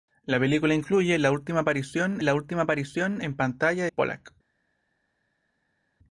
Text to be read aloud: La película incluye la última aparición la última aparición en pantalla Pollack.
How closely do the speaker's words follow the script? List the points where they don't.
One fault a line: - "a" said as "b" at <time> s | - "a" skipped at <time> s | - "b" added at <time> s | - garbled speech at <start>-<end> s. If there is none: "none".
none